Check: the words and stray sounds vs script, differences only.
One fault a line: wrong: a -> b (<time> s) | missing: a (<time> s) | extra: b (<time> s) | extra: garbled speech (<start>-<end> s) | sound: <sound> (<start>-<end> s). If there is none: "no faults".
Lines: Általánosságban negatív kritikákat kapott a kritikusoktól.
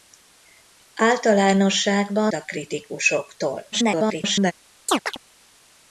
missing: negatív kritikákat kapott (2.3 s)
extra: garbled speech (3.7-4.5 s)
sound: chirp (4.9-5.2 s)